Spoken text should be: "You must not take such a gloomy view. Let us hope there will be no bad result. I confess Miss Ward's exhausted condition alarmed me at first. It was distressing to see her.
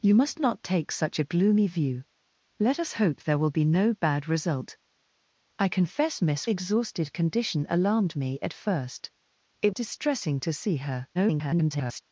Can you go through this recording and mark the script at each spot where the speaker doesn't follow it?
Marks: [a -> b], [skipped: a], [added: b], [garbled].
"You must not take such a gloomy view. Let us hope there will be no bad result. I confess Miss [skipped: Ward's] exhausted condition alarmed me at first. It [skipped: was] distressing to see her. [garbled]